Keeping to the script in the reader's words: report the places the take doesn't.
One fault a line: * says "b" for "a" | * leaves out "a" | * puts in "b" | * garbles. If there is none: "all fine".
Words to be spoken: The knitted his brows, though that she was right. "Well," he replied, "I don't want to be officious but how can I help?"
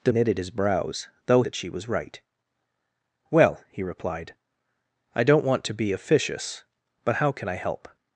all fine